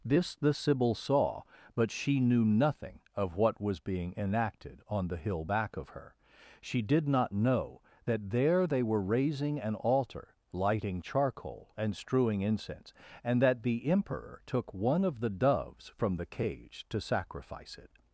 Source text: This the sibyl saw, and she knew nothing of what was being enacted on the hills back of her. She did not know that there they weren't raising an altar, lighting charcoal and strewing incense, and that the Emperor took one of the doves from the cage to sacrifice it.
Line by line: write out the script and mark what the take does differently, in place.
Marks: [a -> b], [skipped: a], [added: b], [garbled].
This the sibyl saw, [and -> but] she knew nothing of what was being enacted on the [hills -> hill] back of her. She did not know that there they [weren't -> were] raising an altar, lighting charcoal and strewing incense, and that the Emperor took one of the doves from the cage to sacrifice it.